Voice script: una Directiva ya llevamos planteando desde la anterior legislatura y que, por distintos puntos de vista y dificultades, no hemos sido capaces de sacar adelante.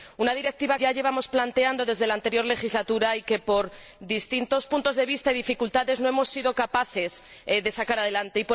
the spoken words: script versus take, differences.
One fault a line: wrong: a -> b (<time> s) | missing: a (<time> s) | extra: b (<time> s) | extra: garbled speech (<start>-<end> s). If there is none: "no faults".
no faults